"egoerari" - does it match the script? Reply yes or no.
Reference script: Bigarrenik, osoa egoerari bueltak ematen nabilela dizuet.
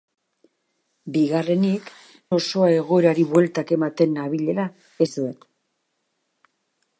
yes